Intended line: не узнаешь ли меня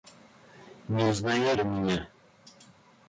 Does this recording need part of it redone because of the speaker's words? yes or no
no